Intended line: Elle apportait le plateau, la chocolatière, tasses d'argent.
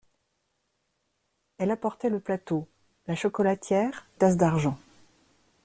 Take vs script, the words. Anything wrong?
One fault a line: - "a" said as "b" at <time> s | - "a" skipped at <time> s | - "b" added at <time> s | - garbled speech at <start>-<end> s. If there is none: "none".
none